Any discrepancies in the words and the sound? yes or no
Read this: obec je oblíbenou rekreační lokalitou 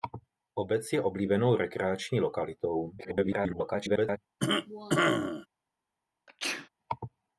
yes